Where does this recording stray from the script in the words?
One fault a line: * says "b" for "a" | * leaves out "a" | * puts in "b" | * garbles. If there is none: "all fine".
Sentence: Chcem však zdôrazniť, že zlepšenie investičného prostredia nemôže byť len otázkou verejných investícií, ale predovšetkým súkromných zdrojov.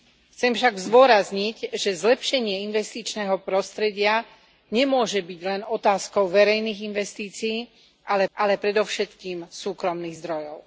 * puts in "ale"